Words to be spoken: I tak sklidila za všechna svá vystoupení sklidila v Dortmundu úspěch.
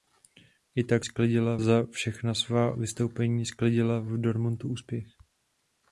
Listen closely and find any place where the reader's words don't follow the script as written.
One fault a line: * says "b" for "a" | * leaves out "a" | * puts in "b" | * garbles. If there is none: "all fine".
all fine